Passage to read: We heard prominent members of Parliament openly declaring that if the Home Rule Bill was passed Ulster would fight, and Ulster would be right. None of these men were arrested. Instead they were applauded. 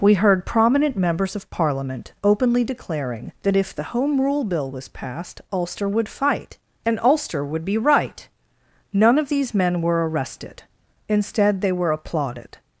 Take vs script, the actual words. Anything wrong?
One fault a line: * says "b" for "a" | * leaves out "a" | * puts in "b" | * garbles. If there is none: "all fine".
all fine